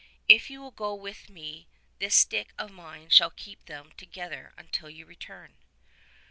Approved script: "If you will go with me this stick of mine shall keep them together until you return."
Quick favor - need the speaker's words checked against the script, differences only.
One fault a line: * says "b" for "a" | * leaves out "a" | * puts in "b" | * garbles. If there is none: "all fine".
all fine